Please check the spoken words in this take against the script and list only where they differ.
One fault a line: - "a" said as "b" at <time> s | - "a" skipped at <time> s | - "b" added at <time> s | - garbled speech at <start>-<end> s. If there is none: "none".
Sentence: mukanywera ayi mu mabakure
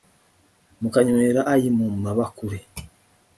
none